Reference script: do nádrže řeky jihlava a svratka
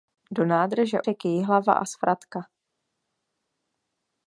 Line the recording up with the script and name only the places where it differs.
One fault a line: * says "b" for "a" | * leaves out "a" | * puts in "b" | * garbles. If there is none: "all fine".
all fine